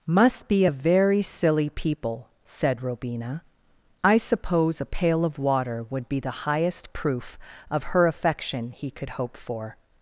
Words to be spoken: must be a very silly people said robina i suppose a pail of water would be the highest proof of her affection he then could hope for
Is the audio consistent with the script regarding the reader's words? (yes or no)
no